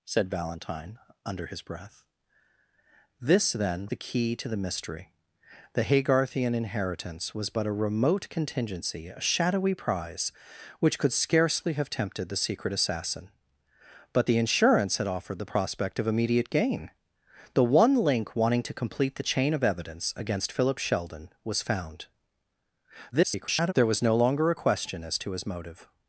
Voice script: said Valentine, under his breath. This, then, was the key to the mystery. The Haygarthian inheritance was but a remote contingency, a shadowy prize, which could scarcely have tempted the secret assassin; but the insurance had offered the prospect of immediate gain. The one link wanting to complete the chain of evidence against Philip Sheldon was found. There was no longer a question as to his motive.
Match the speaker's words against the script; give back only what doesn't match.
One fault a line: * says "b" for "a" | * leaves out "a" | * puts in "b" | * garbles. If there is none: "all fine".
* leaves out "was"
* garbles